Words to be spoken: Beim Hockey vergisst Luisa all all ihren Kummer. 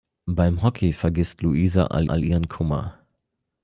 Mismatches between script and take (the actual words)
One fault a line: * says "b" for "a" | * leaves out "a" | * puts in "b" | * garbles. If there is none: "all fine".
all fine